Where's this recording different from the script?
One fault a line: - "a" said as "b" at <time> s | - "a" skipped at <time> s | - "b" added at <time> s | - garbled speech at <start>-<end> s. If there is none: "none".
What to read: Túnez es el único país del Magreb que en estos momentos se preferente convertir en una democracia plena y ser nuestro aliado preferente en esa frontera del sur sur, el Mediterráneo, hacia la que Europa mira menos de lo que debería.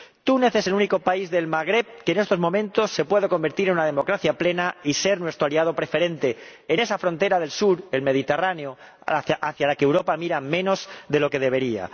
- "preferente" said as "puede" at 3.0 s
- "sur" skipped at 7.8 s